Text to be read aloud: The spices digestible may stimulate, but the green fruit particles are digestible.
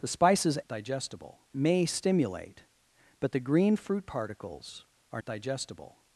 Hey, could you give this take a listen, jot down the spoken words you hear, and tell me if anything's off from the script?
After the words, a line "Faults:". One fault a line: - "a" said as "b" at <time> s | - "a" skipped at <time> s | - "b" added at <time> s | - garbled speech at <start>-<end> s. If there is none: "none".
The spices digestible may stimulate, but the green fruit particles are digestible.
Faults:
none